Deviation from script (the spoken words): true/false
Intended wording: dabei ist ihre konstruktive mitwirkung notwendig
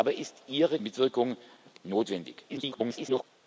true